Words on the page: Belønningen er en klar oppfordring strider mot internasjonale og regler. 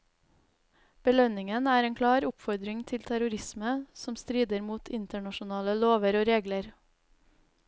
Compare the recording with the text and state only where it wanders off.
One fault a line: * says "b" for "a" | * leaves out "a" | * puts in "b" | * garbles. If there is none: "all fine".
* puts in "til terrorisme som"
* puts in "lover"